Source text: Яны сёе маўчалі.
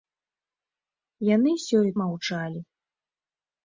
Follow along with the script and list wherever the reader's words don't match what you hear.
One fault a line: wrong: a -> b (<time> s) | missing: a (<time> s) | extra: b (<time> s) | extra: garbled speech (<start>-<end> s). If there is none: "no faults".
no faults